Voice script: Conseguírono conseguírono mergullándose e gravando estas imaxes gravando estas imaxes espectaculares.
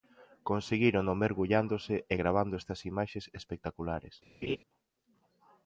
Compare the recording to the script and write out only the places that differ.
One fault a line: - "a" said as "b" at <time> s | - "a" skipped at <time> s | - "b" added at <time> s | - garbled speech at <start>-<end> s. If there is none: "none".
- "conseguírono" skipped at 1.1 s
- "gravando estas imaxes" skipped at 3.2 s